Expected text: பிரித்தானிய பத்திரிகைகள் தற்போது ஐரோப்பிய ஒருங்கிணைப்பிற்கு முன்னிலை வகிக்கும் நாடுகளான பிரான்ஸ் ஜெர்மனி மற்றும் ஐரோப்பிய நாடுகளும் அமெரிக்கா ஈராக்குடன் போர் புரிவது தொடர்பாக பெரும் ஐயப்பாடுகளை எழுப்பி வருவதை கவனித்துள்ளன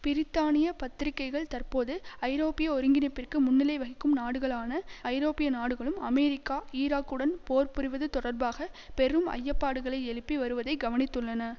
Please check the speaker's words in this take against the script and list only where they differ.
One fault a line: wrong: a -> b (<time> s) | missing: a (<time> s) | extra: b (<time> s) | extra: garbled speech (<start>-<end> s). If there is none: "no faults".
missing: பிரான்ஸ் ஜெர்மனி மற்றும் (4.7 s)